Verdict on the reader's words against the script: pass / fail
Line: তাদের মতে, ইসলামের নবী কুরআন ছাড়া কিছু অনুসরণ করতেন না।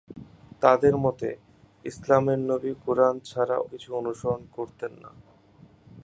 pass